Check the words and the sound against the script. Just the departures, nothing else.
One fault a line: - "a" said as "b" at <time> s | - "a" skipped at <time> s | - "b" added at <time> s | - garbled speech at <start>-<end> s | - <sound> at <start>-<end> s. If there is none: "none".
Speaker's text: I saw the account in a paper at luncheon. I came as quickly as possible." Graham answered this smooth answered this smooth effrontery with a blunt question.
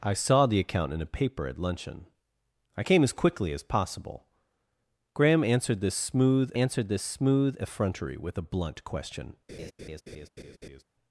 - laugh at 9.5-10.8 s